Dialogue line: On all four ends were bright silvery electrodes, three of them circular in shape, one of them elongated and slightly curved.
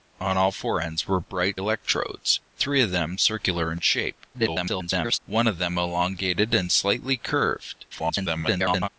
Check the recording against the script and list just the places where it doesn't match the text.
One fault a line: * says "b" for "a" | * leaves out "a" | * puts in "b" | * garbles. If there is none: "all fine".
* leaves out "silvery"
* garbles
* garbles